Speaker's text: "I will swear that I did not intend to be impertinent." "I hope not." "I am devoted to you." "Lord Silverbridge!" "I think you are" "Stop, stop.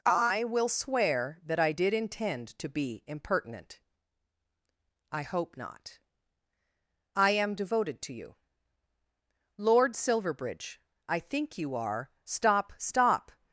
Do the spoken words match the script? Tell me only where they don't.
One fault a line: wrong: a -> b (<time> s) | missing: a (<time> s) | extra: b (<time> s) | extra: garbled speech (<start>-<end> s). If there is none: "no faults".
missing: not (1.9 s)